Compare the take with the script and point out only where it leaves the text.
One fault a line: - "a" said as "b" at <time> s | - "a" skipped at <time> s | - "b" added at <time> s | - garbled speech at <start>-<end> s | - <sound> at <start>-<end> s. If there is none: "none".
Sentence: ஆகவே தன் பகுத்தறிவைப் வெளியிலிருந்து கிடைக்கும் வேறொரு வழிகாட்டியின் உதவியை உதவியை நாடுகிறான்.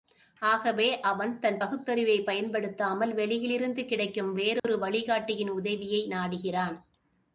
- "அவன்" added at 1.0 s
- "பயன்படுத்தாமல்" added at 2.2 s
- dropout at 4.6-4.6 s
- "உதவியை" skipped at 6.1 s